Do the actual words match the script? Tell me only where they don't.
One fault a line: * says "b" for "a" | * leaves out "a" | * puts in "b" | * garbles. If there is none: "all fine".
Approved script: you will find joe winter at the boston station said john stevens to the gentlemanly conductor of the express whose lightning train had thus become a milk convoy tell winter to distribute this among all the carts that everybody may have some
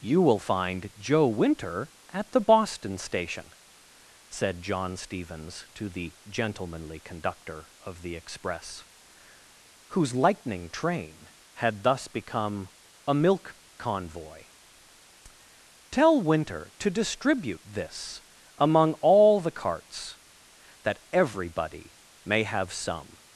all fine